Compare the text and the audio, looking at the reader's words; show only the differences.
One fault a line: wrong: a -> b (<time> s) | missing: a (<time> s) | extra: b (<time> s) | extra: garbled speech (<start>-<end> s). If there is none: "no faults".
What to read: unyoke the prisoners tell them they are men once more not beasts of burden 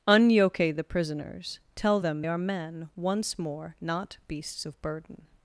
missing: they (2.2 s)